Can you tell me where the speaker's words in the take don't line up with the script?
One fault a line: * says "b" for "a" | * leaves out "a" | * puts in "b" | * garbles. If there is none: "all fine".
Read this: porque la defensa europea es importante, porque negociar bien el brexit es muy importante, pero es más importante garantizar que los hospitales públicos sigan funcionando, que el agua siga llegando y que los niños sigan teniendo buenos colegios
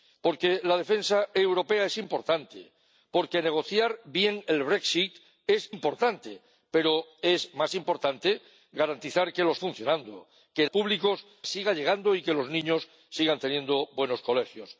* leaves out "muy"
* leaves out "hospitales públicos sigan"
* says "públicos" for "agua"